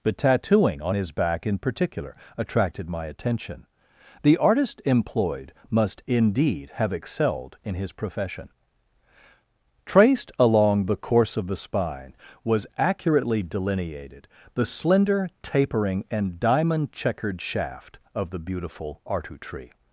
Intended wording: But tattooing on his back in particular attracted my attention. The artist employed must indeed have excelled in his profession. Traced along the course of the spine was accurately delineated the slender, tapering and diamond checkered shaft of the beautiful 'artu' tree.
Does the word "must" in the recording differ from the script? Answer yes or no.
no